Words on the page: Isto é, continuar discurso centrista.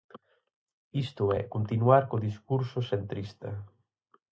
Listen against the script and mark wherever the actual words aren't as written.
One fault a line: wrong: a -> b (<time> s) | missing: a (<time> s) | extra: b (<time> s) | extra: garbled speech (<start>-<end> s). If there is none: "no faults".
extra: co (2.1 s)